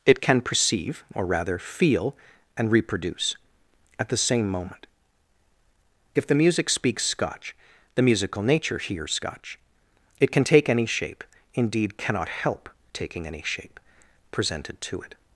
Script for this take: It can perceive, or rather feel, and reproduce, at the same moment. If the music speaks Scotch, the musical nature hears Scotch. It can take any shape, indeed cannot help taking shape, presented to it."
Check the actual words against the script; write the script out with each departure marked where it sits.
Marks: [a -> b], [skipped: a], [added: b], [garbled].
It can perceive, or rather feel, and reproduce, at the same moment. If the music speaks Scotch, the musical nature hears Scotch. It can take any shape, indeed cannot help taking [added: any] shape, presented to it."